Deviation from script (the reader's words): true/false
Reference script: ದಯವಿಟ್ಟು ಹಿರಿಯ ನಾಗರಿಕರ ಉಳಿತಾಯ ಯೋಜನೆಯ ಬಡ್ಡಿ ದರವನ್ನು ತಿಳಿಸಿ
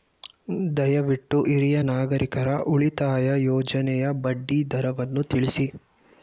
false